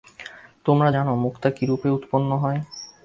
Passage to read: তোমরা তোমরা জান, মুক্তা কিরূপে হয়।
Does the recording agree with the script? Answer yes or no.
no